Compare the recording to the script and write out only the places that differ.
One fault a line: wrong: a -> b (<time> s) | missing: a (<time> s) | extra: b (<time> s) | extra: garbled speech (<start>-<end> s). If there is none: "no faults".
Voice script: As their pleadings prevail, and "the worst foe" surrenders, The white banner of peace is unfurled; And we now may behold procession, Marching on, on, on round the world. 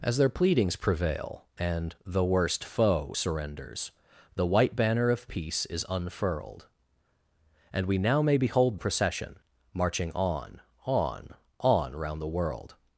no faults